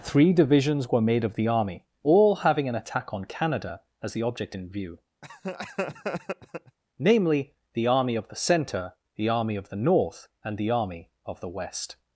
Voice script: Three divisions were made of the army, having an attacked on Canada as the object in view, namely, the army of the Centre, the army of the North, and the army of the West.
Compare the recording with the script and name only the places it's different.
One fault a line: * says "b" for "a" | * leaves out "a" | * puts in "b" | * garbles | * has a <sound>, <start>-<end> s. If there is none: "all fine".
* puts in "all"
* says "attack" for "attacked"
* has a laugh, 5.2-6.8 s